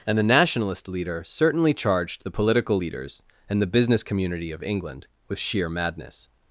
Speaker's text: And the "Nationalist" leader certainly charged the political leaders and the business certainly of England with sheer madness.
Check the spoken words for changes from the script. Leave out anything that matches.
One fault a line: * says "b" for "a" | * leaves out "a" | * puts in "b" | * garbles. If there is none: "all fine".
* says "community" for "certainly"